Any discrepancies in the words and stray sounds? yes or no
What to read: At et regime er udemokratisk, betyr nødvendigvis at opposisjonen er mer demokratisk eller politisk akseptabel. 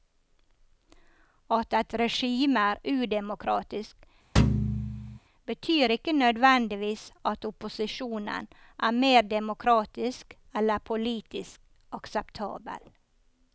yes